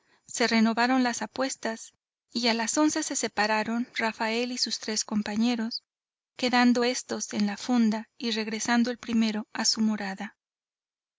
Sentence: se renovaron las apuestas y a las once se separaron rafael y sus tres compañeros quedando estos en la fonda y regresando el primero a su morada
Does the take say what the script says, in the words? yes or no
yes